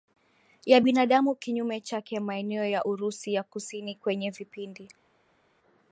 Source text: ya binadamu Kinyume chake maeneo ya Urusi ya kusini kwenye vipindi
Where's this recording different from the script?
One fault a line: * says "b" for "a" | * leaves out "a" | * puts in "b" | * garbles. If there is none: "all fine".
all fine